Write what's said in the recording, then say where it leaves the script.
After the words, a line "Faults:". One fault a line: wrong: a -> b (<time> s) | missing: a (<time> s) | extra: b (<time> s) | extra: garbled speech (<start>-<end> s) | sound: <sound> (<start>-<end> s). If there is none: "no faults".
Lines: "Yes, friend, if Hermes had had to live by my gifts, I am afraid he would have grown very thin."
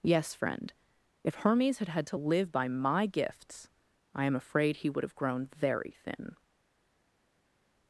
"Yes, friend, if Hermes had had to live by my gifts, I am afraid he would have grown very thin."
Faults:
no faults